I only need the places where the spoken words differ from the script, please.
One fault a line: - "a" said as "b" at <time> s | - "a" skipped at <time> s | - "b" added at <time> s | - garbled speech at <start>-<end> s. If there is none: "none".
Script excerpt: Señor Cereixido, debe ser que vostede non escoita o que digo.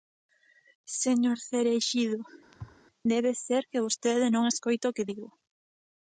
none